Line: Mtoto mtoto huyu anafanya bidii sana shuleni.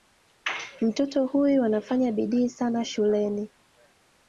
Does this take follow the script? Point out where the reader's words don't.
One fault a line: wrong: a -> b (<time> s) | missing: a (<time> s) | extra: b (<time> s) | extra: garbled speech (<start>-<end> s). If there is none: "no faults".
missing: mtoto (1.2 s)